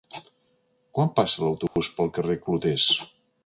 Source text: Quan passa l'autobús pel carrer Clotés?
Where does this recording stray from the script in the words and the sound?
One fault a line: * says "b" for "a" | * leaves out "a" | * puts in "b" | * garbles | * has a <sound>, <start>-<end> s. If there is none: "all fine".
* has a dropout, 1.7-1.8 s